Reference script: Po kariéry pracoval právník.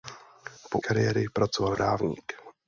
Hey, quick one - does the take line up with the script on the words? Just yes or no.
yes